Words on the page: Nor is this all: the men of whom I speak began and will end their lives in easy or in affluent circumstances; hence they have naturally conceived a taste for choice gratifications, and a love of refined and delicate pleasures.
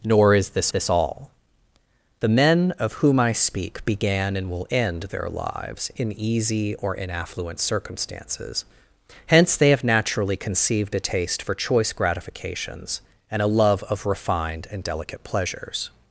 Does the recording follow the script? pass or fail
fail